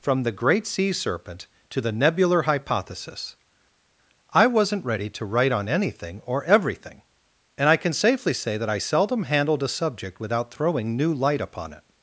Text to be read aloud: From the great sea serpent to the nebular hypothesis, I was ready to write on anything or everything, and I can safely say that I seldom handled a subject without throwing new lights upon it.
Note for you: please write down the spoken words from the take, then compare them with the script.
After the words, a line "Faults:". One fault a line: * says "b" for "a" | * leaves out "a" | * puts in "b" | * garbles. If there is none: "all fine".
From the great sea serpent to the nebular hypothesis, I wasn't ready to write on anything or everything, and I can safely say that I seldom handled a subject without throwing new light upon it.
Faults:
* says "wasn't" for "was"
* says "light" for "lights"